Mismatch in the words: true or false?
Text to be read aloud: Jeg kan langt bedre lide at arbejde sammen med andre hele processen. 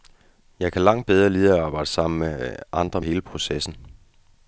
false